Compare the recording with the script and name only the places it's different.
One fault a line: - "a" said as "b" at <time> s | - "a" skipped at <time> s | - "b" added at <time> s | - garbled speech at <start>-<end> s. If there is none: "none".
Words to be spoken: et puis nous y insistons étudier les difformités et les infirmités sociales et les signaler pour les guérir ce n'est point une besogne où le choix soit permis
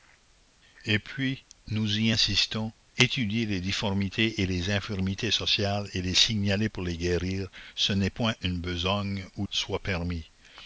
- "le choix" skipped at 9.5 s